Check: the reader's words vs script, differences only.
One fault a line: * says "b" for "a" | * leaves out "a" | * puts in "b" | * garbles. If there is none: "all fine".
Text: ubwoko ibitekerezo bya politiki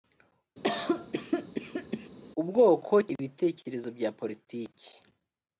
all fine